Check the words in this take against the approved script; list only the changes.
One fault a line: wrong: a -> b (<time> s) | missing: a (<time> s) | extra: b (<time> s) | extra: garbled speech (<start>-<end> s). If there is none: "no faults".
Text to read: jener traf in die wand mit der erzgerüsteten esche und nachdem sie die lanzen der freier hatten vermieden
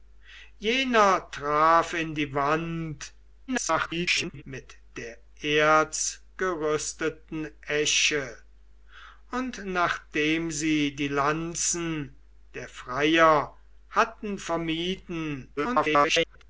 extra: garbled speech (3.5-4.4 s)
extra: garbled speech (15.6-16.4 s)